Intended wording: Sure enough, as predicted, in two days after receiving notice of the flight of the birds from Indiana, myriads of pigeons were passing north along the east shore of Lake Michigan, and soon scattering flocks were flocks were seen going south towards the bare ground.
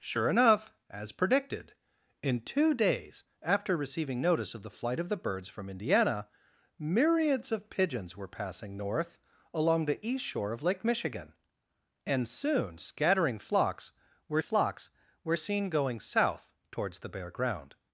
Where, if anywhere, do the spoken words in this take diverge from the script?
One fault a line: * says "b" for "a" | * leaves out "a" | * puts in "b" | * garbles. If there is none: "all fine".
all fine